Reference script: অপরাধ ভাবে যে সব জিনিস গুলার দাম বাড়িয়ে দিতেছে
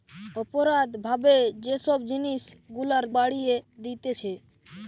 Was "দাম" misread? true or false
true